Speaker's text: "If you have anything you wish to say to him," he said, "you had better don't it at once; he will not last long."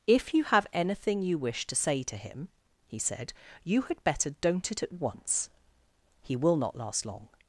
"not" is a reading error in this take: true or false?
false